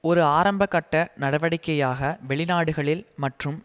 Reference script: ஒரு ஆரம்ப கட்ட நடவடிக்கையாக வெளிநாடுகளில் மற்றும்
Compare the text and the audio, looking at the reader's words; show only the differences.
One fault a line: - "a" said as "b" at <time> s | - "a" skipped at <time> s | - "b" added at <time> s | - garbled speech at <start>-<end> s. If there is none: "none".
none